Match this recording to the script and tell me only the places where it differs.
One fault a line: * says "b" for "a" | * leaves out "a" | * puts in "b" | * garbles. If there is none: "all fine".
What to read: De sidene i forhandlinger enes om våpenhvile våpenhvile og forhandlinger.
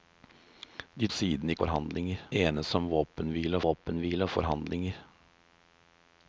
all fine